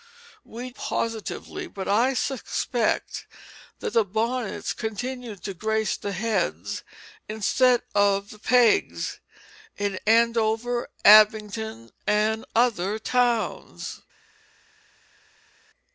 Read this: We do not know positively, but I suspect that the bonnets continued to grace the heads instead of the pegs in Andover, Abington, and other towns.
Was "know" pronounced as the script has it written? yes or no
no